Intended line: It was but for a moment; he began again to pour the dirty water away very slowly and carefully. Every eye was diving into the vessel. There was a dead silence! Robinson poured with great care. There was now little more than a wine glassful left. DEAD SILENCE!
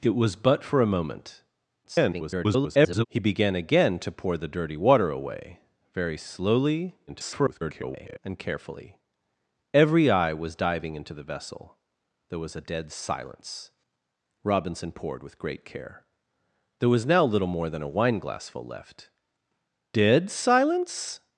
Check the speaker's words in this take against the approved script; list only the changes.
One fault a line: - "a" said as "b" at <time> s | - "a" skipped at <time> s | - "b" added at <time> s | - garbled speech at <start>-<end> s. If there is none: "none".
- garbled speech at 1.8-3.0 s
- garbled speech at 7.1-8.2 s